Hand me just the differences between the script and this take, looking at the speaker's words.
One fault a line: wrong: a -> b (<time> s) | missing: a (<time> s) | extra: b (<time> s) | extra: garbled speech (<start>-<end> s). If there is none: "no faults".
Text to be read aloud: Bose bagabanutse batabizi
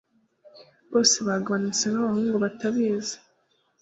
extra: nkabahungu (1.9 s)